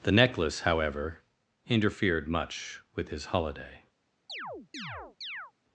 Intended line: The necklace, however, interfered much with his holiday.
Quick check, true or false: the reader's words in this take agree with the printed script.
true